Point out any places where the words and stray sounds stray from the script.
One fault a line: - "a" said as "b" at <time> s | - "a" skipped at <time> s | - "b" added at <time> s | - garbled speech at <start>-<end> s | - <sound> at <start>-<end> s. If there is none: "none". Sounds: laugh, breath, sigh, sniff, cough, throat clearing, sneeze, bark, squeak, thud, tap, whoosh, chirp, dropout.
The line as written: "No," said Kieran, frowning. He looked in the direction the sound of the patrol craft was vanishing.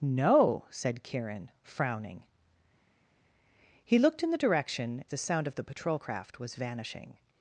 none